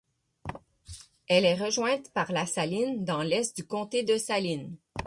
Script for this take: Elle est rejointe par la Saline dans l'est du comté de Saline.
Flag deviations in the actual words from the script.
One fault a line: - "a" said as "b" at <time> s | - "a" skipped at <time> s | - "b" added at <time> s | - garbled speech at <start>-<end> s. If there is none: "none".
none